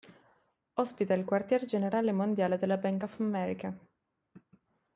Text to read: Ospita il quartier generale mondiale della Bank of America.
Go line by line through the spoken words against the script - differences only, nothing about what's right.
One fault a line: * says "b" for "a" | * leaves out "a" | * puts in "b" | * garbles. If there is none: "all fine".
all fine